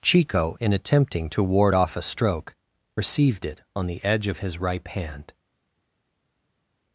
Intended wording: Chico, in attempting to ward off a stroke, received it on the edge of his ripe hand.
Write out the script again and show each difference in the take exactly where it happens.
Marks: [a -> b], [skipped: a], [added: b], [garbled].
Chico, in attempting to ward off a stroke, received it on the edge of his ripe hand.